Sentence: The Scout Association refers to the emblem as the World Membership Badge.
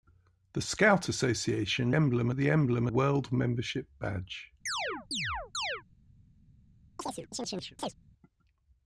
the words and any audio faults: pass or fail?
fail